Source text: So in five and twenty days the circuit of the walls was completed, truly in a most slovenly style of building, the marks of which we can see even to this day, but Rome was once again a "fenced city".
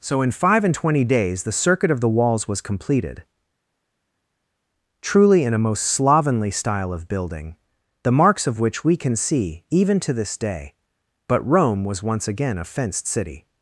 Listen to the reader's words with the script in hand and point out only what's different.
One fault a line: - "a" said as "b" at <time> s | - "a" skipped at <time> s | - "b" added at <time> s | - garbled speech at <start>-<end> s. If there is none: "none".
none